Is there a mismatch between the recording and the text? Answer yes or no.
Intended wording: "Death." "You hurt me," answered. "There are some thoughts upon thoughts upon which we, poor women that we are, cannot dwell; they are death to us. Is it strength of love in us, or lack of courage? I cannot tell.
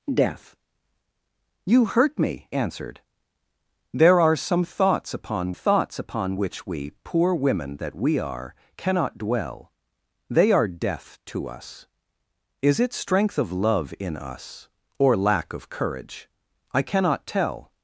no